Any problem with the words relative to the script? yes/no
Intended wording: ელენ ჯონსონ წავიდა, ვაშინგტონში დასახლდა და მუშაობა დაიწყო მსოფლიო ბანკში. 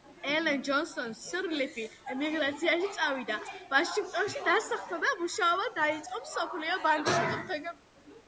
yes